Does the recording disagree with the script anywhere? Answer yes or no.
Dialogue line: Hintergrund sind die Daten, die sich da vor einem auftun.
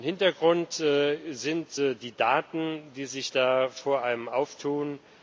no